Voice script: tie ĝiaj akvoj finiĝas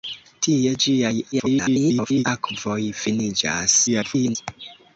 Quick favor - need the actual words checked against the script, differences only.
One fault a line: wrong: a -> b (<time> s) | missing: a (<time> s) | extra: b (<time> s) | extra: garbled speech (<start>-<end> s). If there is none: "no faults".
extra: garbled speech (1.3-2.2 s)
extra: garbled speech (3.9-4.4 s)